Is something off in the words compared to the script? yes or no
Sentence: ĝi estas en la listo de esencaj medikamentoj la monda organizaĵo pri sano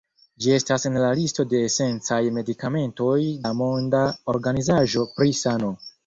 no